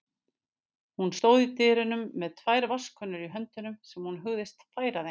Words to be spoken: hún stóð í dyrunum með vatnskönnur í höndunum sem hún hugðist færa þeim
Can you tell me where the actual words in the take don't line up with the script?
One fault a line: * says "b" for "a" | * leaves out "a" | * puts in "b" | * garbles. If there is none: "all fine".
* puts in "tvær"